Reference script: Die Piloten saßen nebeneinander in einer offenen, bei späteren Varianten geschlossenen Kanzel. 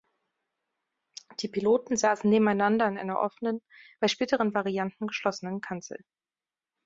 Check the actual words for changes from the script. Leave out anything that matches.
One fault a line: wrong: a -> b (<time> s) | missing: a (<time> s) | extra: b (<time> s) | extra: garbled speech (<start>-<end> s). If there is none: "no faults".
no faults